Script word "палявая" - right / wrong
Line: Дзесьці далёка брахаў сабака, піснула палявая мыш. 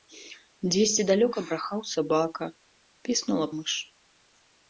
wrong